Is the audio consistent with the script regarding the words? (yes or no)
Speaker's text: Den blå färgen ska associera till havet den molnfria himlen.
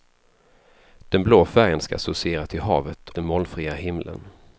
yes